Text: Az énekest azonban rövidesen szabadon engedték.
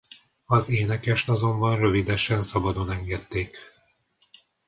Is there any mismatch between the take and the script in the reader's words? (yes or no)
no